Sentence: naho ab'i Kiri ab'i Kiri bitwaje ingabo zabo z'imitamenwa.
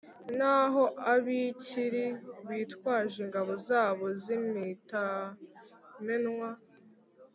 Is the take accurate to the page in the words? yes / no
no